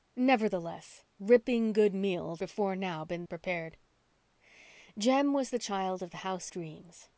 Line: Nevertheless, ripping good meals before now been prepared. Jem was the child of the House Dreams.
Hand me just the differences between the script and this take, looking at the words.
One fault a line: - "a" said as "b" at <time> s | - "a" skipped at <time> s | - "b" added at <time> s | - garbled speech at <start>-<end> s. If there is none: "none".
none